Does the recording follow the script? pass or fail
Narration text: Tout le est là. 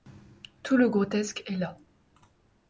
fail